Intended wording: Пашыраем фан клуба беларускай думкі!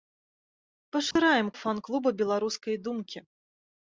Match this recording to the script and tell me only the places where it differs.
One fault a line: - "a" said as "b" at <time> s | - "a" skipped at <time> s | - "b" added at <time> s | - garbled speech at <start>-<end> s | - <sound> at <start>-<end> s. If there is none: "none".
- dropout at 1.1-1.2 s